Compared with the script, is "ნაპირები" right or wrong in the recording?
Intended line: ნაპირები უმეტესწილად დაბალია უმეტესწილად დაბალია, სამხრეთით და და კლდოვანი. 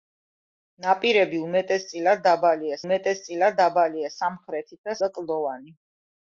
right